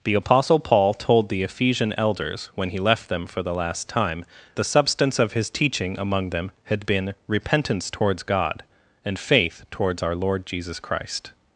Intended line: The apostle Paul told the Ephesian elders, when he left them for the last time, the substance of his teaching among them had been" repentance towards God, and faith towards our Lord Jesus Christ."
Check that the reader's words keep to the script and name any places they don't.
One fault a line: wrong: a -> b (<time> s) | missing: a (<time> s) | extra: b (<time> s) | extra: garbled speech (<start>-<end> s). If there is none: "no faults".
no faults